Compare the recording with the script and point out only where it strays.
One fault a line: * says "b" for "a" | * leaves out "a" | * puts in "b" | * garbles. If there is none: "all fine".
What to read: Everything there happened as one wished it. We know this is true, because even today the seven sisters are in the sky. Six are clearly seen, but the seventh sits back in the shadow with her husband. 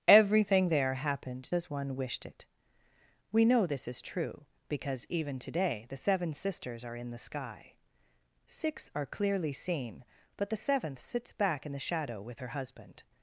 all fine